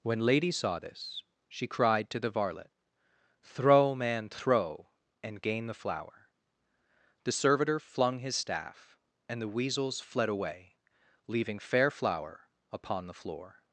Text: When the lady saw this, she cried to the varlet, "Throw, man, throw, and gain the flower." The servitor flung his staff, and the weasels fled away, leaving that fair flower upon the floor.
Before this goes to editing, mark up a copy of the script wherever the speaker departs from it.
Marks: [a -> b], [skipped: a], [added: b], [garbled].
When [skipped: the] lady saw this, she cried to the varlet, "Throw, man, throw, and gain the flower." The servitor flung his staff, and the weasels fled away, leaving [skipped: that] fair flower upon the floor.